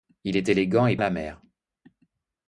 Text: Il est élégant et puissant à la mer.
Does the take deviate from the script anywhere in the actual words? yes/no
yes